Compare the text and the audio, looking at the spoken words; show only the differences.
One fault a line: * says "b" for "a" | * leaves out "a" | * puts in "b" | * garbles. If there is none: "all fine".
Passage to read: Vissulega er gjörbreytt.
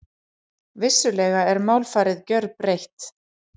* puts in "málfarið"